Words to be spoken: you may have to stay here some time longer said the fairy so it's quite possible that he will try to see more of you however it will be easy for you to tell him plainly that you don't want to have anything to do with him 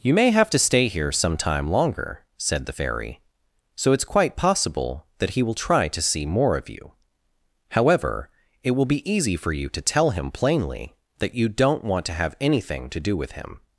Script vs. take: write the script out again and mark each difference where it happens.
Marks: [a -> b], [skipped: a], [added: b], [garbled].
you may have to stay here some time longer said the fairy so it's quite possible that he will try to see more of you however it will be easy for you to tell him plainly that you don't want to have anything to do with him